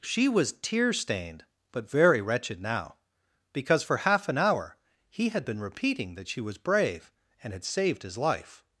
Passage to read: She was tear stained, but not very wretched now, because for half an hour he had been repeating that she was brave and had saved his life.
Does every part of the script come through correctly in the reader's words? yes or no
no